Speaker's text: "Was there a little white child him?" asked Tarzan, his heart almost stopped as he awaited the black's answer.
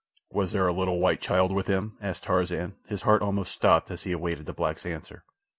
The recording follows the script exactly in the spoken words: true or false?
false